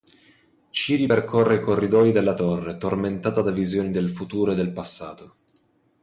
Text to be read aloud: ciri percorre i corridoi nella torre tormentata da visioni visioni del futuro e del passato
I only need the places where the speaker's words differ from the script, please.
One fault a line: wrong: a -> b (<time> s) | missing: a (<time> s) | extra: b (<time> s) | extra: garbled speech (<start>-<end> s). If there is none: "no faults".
wrong: nella -> della (2.1 s)
missing: visioni (3.9 s)